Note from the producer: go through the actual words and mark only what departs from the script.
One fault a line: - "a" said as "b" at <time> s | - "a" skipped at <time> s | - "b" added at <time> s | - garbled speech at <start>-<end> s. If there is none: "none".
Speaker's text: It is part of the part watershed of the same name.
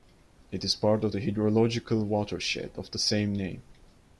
- "part" said as "hydrological" at 1.2 s